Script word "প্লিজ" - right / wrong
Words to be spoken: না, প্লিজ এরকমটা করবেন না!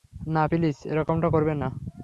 right